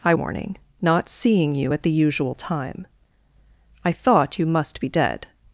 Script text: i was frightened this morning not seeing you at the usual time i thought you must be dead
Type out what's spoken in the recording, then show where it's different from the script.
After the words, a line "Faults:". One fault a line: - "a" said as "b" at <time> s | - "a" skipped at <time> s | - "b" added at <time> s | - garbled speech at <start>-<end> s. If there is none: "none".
i morning not seeing you at the usual time i thought you must be dead
Faults:
- "was frightened this" skipped at 0.1 s